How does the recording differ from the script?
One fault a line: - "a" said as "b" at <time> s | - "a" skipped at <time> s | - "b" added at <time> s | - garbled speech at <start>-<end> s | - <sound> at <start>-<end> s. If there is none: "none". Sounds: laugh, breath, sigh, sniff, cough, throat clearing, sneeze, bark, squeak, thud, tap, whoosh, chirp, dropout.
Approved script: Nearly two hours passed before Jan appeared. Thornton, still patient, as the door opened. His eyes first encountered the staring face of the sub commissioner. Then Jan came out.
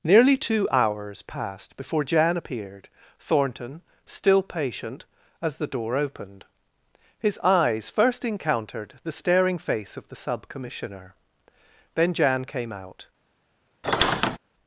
- squeak at 13.8-14.4 s